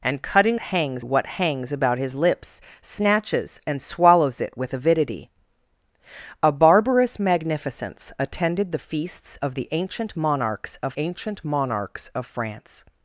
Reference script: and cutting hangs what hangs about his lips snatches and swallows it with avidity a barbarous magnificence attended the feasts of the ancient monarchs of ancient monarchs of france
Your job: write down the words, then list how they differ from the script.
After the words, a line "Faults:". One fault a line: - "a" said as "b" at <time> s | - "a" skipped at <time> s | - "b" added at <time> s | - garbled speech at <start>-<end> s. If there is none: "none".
and cutting hangs what hangs about his lips snatches and swallows it with avidity a barbarous magnificence attended the feasts of the ancient monarchs of ancient monarchs of france
Faults:
none